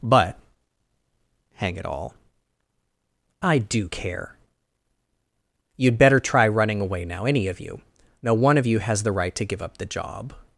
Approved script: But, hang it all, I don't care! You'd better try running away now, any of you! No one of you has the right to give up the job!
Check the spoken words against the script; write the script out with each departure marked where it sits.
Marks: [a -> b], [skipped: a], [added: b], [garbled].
But, hang it all, I [don't -> do] care! You'd better try running away now, any of you! No one of you has the right to give up the job!